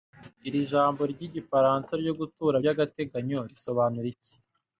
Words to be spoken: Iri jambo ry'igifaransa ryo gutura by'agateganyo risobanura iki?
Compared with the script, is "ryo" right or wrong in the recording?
right